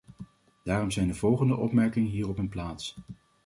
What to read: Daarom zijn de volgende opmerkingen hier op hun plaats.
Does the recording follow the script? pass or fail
pass